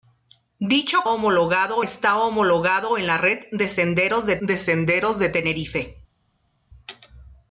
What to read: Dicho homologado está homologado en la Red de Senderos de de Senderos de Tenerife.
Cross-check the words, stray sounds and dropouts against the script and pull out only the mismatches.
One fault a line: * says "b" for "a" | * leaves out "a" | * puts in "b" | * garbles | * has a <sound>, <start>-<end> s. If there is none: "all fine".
all fine